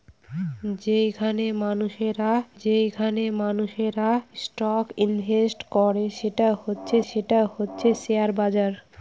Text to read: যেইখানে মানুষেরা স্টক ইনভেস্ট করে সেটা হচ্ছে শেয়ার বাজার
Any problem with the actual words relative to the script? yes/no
yes